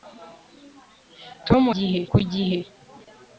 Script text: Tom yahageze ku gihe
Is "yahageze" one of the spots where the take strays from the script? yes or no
yes